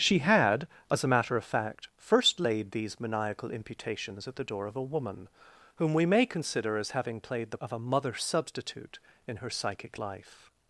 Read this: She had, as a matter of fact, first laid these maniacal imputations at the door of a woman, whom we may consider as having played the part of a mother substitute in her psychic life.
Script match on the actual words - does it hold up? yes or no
no